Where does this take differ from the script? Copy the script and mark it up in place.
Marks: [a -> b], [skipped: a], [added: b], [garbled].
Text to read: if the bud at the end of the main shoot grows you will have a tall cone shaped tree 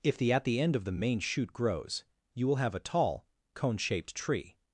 if the [skipped: bud] at the end of the main shoot grows you will have a tall cone shaped tree